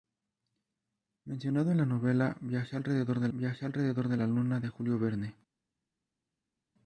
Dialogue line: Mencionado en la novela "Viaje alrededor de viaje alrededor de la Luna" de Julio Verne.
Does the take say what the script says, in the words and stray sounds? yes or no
yes